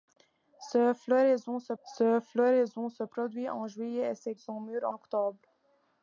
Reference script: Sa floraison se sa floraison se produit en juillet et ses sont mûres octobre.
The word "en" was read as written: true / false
true